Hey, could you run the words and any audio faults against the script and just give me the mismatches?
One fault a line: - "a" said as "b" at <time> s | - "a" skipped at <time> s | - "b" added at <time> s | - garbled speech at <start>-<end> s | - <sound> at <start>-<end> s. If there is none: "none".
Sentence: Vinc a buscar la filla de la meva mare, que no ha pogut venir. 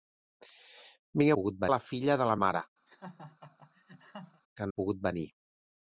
- "buscar" said as "pogut" at 1.4 s
- "meva" skipped at 2.4 s
- laugh at 2.9-4.4 s
- "no" skipped at 4.7 s